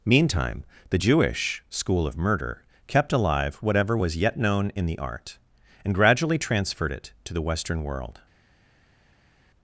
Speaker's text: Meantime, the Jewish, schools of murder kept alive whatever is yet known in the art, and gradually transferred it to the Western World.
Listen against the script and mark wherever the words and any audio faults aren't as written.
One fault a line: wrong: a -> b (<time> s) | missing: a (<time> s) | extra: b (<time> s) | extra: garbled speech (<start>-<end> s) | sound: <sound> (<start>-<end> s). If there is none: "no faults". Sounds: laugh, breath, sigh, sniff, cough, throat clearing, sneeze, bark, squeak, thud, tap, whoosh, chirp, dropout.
wrong: schools -> school (1.7 s)
wrong: is -> was (4.0 s)